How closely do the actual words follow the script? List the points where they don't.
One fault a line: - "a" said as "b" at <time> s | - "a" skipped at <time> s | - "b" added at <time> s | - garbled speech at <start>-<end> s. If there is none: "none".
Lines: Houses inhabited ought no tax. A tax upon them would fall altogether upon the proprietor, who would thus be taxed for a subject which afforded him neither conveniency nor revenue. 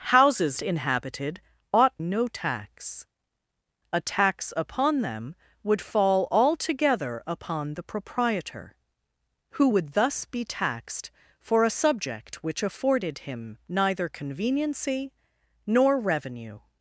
none